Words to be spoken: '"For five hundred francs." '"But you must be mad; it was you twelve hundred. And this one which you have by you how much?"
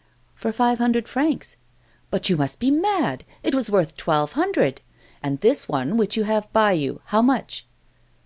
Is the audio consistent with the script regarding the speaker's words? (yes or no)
no